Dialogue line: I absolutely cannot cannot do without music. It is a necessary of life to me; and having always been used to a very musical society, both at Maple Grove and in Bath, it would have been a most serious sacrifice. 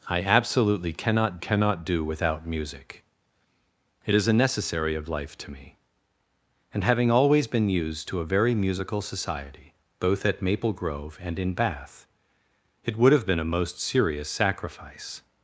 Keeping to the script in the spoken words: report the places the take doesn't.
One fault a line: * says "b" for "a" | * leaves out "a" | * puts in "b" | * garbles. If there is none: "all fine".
all fine